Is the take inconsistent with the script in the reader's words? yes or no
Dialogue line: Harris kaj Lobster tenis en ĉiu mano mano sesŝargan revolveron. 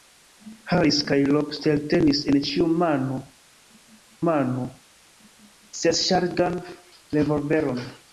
no